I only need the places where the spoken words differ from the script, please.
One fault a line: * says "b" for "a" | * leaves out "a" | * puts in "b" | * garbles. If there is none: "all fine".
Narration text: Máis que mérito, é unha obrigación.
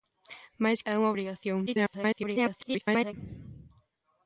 * leaves out "que mérito"
* garbles